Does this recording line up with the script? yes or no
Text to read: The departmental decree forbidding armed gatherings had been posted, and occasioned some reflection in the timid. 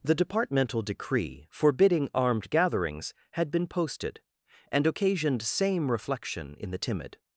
no